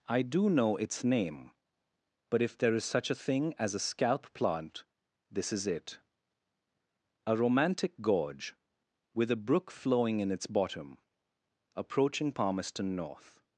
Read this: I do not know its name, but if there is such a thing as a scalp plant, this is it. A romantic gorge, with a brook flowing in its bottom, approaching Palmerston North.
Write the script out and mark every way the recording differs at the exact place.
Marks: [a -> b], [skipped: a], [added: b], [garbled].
I do [skipped: not] know its name, but if there is such a thing as a scalp plant, this is it. A romantic gorge, with a brook flowing in its bottom, approaching Palmerston North.